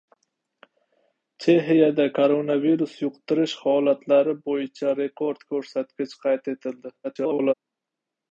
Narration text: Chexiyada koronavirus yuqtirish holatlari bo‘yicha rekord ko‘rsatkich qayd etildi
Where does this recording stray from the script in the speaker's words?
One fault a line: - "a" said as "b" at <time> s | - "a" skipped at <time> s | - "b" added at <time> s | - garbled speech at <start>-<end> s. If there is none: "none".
- garbled speech at 7.0-7.5 s